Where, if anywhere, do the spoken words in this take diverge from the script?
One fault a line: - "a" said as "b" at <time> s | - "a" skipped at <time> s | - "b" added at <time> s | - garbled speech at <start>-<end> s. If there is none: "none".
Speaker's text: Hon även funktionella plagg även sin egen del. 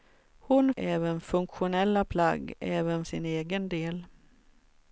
none